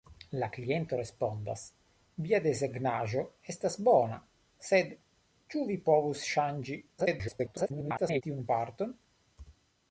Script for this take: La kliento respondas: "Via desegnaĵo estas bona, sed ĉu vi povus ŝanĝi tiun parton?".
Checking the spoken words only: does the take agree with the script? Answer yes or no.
no